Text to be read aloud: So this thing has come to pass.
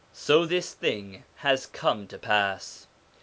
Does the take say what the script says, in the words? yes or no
yes